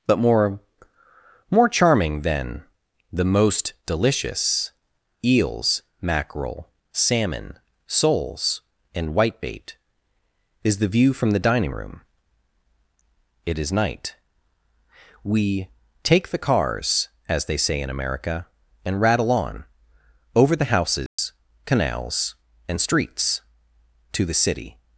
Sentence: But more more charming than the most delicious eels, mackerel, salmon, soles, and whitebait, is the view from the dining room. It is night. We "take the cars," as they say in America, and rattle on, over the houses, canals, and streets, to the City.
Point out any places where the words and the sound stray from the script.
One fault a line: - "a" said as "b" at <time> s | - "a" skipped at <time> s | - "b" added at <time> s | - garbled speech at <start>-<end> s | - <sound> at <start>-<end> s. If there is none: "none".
- dropout at 21.1-21.2 s